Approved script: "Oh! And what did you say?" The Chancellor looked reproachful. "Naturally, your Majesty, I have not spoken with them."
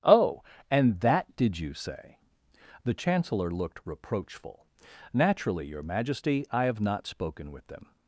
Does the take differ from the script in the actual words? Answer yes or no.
yes